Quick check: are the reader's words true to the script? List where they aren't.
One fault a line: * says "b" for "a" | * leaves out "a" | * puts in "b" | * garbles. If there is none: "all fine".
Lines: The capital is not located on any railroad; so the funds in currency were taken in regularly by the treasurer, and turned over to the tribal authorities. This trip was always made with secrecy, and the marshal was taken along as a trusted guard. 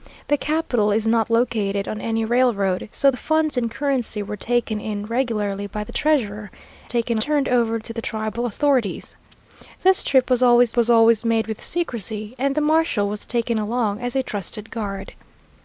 * says "taken" for "and"
* puts in "was always"